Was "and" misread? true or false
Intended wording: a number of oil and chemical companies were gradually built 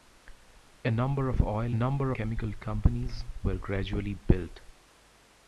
true